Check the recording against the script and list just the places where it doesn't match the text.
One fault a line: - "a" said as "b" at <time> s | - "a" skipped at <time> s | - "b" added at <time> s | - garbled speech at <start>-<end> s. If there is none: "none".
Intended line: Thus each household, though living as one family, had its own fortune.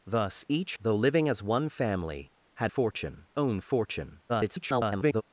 - "household" skipped at 0.8 s
- "its" said as "fortune" at 2.7 s
- garbled speech at 4.3-5.2 s